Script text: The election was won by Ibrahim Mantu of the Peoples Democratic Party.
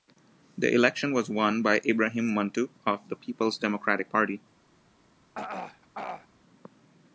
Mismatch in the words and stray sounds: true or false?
true